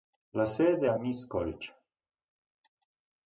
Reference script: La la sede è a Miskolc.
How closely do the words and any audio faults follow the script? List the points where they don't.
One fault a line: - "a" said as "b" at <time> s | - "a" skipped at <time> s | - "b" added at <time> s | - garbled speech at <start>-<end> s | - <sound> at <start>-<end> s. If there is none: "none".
- "la" skipped at 0.5 s